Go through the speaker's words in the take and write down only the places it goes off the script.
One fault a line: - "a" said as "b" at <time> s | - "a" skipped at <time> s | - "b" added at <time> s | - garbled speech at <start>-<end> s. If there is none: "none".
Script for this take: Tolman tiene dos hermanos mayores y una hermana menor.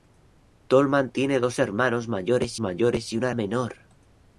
- "mayores" added at 2.6 s
- "hermana" skipped at 3.3 s